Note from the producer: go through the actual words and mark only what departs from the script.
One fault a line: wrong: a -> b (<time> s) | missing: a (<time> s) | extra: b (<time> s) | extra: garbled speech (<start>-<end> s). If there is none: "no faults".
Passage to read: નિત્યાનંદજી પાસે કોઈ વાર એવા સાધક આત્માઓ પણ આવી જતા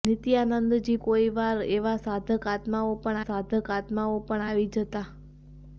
missing: પાસે (0.9 s)
extra: સાધક આત્માઓ પણ (3.2 s)